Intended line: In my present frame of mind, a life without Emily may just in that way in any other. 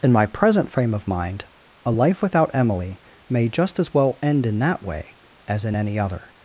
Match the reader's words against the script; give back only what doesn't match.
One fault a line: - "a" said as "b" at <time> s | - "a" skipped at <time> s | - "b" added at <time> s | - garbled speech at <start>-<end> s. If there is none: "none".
- "as well end" added at 3.8 s
- "as" added at 5.5 s